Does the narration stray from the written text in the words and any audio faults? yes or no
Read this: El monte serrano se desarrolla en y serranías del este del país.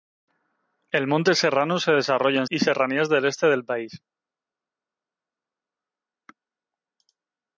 no